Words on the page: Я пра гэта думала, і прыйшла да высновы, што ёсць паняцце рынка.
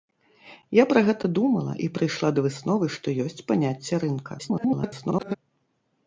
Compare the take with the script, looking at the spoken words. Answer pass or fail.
fail